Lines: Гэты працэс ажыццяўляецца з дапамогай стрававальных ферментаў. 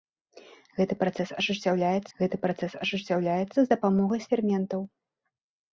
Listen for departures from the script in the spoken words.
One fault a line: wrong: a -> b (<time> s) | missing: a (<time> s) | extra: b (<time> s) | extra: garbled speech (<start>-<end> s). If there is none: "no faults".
extra: гэты працэс ажыццяўляецца (2.2 s)
missing: стрававальных (4.2 s)